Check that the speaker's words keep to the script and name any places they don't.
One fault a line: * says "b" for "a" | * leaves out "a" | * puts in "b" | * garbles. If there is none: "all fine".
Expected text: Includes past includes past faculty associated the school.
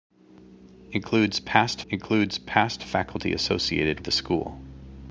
all fine